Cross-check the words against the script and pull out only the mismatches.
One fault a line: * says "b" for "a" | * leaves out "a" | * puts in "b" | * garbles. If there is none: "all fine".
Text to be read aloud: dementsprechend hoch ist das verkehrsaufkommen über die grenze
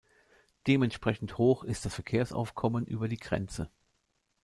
all fine